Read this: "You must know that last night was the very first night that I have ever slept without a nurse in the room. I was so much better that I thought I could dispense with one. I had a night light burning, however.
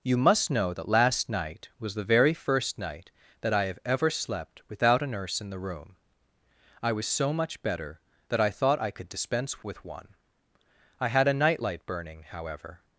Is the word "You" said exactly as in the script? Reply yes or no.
yes